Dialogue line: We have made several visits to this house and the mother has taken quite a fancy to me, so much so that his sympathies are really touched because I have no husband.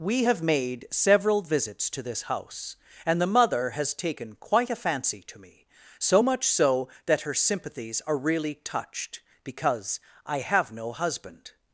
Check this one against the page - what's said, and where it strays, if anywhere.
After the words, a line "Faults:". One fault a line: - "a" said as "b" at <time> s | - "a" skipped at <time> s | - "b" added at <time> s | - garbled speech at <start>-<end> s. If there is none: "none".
We have made several visits to this house and the mother has taken quite a fancy to me, so much so that her sympathies are really touched because I have no husband.
Faults:
- "his" said as "her" at 7.2 s